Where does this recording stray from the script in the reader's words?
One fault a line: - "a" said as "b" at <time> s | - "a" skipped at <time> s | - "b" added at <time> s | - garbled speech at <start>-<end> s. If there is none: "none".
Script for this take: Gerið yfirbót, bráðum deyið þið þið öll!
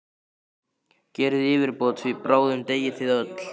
- "því" added at 2.0 s
- "þið" skipped at 3.1 s